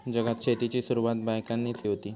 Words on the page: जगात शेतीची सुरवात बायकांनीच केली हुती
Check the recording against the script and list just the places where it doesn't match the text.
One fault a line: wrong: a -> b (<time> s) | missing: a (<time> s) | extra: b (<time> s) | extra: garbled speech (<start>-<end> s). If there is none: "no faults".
missing: केली (1.8 s)